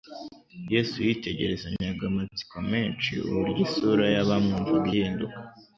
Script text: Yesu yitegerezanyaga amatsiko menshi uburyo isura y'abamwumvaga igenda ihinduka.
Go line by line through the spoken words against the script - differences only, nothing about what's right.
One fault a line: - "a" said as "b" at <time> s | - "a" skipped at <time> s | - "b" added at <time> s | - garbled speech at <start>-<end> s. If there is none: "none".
- "igenda" skipped at 4.9 s